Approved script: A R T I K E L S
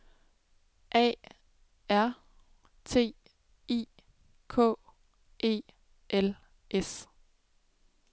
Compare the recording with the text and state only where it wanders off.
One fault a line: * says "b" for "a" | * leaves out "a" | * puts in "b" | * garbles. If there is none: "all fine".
all fine